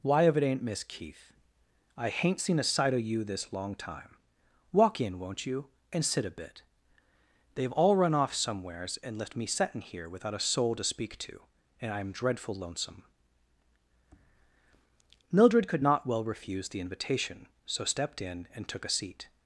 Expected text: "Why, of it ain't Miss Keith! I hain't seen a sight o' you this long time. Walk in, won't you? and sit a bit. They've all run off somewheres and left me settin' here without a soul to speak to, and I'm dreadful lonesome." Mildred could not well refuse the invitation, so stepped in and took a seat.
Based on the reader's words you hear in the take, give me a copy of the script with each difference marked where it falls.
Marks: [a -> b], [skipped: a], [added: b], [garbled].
"Why, of it ain't Miss Keith! I hain't seen a sight o' you this long time. Walk in, won't you? and sit a bit. They've all run off somewheres and left me settin' here without a soul to speak to, and I'm dreadful lonesome." Mildred could not well refuse the invitation, so stepped in and took a seat.